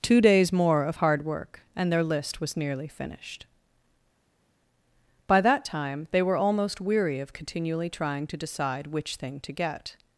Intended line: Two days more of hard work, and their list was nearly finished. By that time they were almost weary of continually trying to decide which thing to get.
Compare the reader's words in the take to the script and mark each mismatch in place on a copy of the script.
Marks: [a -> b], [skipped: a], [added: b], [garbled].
Two days more of hard work, and their list was nearly finished. By that time they were almost weary of continually trying to decide which thing to get.